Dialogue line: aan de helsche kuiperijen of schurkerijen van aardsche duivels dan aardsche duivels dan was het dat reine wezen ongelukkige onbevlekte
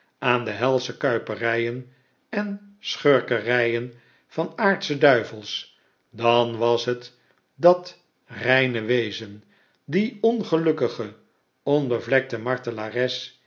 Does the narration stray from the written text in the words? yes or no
yes